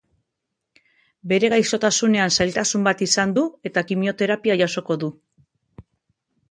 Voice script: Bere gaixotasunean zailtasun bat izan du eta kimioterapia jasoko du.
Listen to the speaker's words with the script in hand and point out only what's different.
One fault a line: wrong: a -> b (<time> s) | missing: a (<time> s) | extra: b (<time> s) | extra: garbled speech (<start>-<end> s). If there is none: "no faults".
no faults